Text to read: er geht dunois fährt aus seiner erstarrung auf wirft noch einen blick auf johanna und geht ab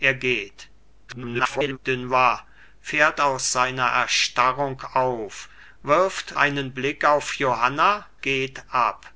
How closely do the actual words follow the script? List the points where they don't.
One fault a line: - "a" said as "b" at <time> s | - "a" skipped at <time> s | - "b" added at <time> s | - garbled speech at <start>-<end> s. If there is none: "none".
- garbled speech at 1.1-1.8 s
- "noch" skipped at 6.4 s
- "und" skipped at 8.0 s